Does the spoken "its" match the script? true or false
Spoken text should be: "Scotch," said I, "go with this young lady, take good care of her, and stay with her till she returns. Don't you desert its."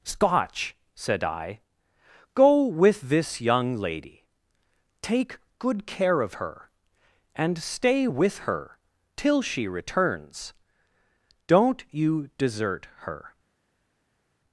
false